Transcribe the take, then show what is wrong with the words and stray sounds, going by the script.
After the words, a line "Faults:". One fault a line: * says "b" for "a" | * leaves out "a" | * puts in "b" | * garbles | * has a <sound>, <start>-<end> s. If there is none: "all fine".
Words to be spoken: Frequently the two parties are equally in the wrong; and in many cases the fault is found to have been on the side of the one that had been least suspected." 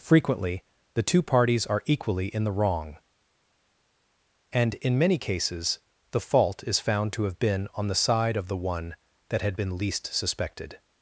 Frequently the two parties are equally in the wrong; and in many cases the fault is found to have been on the side of the one that had been least suspected."
Faults:
all fine